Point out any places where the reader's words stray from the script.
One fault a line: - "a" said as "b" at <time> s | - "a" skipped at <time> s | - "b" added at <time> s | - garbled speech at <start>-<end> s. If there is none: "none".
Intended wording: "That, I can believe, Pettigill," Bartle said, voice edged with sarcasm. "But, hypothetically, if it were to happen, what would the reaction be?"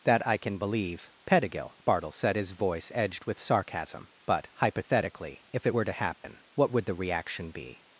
- "his" added at 2.4 s